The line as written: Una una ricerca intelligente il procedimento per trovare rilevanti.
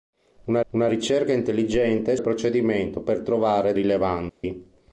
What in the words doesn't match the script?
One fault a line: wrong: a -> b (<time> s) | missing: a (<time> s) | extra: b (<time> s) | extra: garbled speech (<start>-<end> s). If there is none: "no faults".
no faults